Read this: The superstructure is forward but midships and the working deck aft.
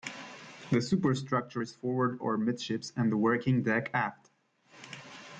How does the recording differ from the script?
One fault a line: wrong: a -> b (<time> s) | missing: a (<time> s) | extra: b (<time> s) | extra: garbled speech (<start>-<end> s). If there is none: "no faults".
wrong: but -> or (2.2 s)